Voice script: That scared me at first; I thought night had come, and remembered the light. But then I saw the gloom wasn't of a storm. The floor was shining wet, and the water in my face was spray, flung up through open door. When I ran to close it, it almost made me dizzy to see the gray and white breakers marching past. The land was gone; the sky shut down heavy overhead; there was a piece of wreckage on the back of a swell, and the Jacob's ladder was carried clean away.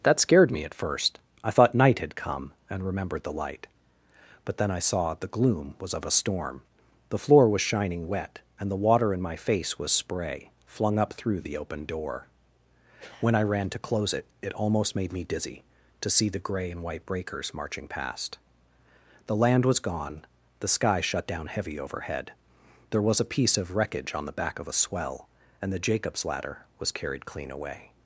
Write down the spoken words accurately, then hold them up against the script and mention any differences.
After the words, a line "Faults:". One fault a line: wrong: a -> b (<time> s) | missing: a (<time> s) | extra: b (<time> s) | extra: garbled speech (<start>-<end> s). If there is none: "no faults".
That scared me at first; I thought night had come, and remembered the light. But then I saw the gloom was of a storm. The floor was shining wet, and the water in my face was spray, flung up through the open door. When I ran to close it, it almost made me dizzy to see the gray and white breakers marching past. The land was gone; the sky shut down heavy overhead; there was a piece of wreckage on the back of a swell, and the Jacob's ladder was carried clean away.
Faults:
wrong: wasn't -> was (5.8 s)
extra: the (11.4 s)